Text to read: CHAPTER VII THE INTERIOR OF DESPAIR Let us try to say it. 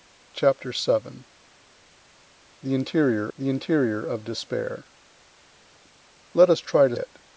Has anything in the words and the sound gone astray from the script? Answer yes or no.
yes